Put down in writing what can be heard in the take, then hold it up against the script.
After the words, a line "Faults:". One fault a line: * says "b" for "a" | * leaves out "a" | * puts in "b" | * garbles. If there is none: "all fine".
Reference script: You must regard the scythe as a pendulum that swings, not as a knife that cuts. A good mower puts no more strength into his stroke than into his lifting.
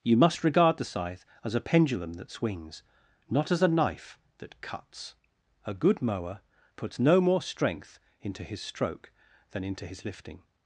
You must regard the scythe as a pendulum that swings, not as a knife that cuts. A good mower puts no more strength into his stroke than into his lifting.
Faults:
all fine